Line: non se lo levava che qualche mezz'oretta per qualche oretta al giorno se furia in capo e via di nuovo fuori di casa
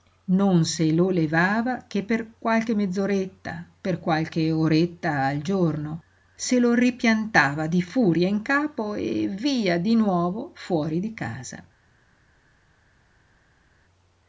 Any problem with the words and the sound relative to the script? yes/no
yes